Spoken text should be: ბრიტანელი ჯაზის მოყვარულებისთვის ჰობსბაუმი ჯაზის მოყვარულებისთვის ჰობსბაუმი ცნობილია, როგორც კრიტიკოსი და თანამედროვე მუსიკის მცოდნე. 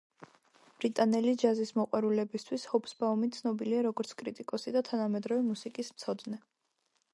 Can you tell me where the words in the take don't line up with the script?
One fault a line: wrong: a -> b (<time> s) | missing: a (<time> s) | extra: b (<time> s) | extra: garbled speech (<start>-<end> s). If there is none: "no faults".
missing: ჯაზის მოყვარულებისთვის ჰობსბაუმი (3.3 s)